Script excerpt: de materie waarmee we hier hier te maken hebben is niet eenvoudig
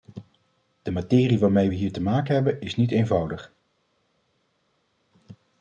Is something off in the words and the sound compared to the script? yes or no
yes